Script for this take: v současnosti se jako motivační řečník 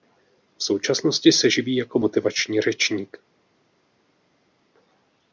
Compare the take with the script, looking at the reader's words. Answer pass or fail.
fail